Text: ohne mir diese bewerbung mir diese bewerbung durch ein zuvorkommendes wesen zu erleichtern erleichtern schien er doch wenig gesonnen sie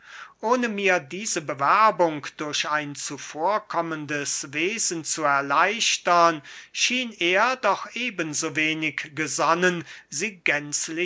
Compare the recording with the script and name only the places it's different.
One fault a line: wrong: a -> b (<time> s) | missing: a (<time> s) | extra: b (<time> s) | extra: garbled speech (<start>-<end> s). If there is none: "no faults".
missing: mir diese bewerbung (2.2 s)
missing: erleichtern (6.4 s)
extra: eben so (8.0 s)